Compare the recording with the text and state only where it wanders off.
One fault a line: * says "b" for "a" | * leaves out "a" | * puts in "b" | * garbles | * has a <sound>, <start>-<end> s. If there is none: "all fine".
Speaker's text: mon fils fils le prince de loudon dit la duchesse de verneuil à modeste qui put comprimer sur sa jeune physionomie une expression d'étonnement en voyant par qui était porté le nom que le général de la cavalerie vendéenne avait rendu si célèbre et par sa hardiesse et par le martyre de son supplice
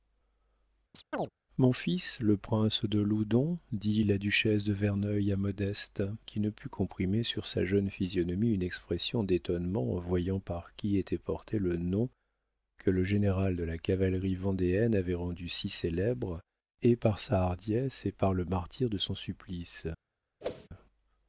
* has a chirp, 0.9-1.3 s
* leaves out "fils"
* puts in "ne"
* has a whoosh, 20.4-20.7 s